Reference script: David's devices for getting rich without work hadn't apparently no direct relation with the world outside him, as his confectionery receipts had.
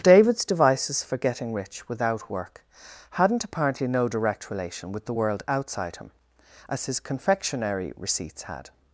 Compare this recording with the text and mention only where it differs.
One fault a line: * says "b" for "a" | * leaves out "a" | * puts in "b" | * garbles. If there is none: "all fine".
all fine